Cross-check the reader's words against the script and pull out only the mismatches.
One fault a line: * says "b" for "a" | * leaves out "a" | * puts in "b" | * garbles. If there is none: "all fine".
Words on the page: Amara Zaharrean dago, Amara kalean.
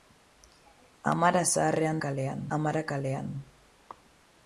* says "kalean" for "dago"